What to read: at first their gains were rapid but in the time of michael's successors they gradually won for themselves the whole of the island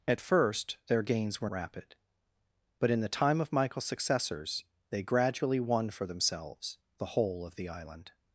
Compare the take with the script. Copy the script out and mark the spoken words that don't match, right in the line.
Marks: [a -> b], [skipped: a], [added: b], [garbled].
at first their gains were rapid but in the time of michael's successors they gradually won for themselves the whole of the island